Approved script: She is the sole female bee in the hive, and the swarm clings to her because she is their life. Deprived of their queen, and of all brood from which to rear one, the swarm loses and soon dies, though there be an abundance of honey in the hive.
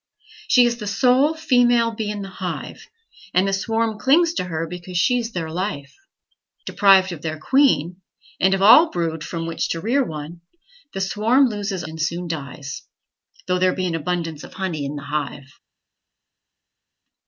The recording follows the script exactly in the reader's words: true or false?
true